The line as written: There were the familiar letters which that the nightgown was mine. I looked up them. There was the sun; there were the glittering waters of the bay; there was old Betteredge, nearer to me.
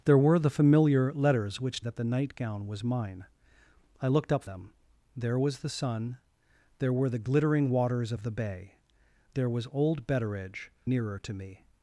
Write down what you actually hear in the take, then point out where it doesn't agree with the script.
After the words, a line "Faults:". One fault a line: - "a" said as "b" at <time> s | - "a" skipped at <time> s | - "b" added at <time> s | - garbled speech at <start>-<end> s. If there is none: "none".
There were the familiar letters which that the nightgown was mine. I looked up them. There was the sun; there were the glittering waters of the bay; there was old Betteredge, nearer to me.
Faults:
none